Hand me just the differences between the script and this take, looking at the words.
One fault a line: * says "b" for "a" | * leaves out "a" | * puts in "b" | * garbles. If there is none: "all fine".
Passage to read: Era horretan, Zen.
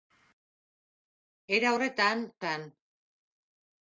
all fine